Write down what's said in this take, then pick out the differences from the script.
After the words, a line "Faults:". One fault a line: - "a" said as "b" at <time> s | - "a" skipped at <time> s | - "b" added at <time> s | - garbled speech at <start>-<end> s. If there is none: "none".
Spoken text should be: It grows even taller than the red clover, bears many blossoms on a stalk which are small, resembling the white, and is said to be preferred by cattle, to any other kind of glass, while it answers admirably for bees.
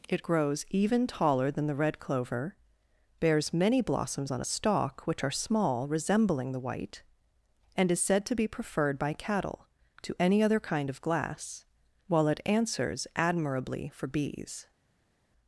It grows even taller than the red clover, bears many blossoms on a stalk which are small, resembling the white, and is said to be preferred by cattle, to any other kind of glass, while it answers admirably for bees.
Faults:
none